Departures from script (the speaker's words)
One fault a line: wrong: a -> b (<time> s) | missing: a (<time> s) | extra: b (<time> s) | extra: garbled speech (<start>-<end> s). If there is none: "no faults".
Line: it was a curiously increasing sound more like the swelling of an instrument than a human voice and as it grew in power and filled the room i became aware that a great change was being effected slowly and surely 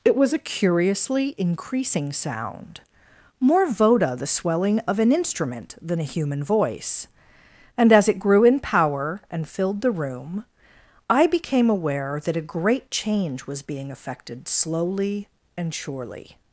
wrong: like -> voda (3.7 s)